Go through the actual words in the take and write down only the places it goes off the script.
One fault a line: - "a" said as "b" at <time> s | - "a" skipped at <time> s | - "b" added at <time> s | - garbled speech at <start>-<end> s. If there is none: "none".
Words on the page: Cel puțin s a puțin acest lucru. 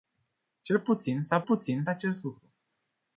none